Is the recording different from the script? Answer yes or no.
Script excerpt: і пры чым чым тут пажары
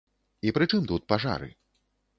yes